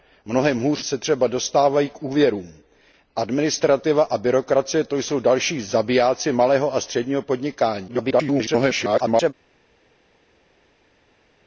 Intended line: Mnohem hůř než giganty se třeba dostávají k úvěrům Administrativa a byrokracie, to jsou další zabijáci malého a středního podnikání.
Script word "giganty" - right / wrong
wrong